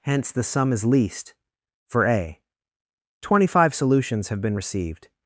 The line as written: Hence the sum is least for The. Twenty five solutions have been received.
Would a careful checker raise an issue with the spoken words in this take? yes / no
yes